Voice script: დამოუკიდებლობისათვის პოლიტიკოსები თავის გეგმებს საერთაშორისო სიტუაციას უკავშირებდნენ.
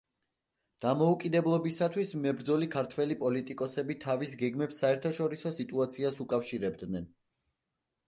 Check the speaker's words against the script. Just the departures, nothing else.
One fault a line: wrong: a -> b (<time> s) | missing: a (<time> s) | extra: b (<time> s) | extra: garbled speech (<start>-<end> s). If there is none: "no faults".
extra: მებრძოლი ქართველი (2.2 s)